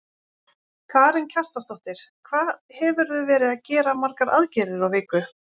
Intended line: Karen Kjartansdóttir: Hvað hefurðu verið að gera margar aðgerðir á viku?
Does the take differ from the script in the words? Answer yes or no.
no